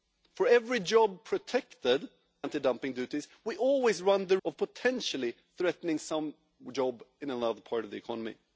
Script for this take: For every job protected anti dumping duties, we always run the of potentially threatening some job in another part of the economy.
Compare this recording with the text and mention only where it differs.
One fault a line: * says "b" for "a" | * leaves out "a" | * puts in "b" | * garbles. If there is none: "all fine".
all fine